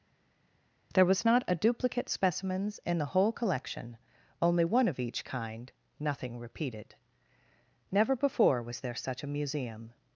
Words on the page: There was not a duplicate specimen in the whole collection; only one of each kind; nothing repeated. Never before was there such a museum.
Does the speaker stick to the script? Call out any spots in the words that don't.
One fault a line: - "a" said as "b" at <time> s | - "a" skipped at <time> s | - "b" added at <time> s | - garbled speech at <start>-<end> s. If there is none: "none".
- "specimen" said as "specimens" at 2.1 s